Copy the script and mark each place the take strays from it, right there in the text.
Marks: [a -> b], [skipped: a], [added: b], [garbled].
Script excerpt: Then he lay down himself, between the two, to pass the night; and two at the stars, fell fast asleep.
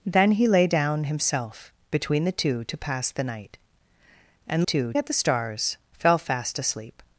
Then he lay down himself, between the two, to pass the night; and two at the stars, fell fast asleep.